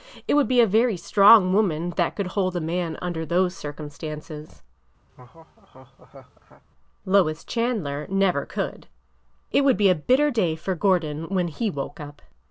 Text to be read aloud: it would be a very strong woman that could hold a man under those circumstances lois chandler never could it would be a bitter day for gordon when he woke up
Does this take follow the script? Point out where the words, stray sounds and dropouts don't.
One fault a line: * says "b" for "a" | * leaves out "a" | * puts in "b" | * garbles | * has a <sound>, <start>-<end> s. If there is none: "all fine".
* has a laugh, 5.1-6.6 s